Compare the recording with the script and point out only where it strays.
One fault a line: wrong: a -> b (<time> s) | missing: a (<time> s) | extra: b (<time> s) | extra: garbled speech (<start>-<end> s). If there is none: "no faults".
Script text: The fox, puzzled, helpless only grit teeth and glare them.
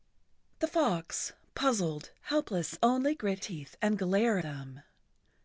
no faults